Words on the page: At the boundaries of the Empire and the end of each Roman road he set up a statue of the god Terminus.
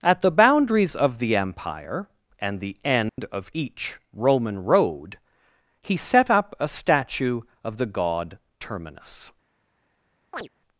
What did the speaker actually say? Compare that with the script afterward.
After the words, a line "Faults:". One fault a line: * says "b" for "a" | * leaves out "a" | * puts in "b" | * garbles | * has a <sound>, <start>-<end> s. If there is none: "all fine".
At the boundaries of the Empire and the end of each Roman road he set up a statue of the god Terminus.
Faults:
* has a dropout, 3.1-3.2 s
* has a chirp, 10.3-10.5 s